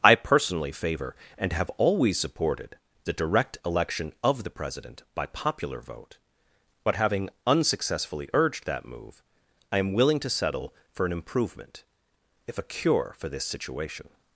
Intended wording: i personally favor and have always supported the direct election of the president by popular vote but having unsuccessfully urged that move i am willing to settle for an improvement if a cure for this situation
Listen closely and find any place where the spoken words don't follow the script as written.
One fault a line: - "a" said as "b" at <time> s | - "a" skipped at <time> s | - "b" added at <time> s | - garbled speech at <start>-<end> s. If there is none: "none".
none